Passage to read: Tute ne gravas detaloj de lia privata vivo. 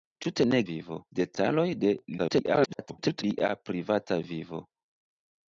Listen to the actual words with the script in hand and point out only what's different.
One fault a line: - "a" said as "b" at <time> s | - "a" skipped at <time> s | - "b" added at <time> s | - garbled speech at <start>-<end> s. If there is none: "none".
- "gravas" said as "vivo" at 0.7 s
- garbled speech at 2.2-3.2 s